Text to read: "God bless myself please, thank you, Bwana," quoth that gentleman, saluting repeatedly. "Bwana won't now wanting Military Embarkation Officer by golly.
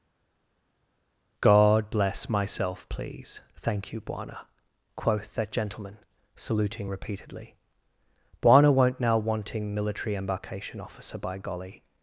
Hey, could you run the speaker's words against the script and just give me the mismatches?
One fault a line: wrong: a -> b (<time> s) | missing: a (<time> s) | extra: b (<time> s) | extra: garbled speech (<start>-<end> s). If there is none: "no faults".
no faults